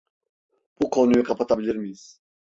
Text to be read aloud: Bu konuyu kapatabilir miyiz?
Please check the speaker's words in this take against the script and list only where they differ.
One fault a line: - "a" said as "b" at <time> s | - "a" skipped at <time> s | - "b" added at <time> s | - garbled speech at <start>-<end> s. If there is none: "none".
none